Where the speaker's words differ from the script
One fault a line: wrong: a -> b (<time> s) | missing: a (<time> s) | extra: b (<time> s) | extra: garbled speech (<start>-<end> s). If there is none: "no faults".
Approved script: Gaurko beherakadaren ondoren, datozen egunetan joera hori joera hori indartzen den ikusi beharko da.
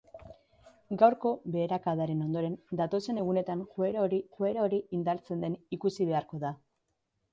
no faults